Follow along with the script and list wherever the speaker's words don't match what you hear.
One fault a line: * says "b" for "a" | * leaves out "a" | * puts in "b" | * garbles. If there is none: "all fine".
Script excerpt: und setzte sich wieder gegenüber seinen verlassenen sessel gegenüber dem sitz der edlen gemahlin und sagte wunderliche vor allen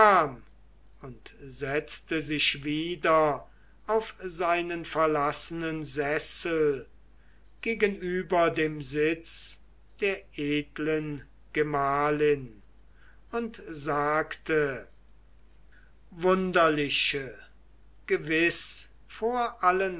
* says "auf" for "gegenüber"
* puts in "gewiß"